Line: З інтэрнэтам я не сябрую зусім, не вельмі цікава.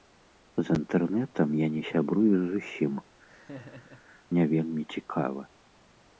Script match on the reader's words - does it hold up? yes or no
yes